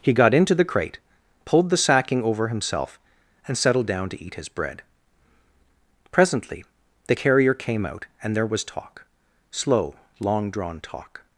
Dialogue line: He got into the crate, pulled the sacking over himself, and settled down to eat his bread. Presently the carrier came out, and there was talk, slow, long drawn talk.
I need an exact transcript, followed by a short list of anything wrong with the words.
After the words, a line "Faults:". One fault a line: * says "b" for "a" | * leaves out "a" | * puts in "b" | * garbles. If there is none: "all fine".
He got into the crate, pulled the sacking over himself, and settled down to eat his bread. Presently the carrier came out, and there was talk, slow, long drawn talk.
Faults:
all fine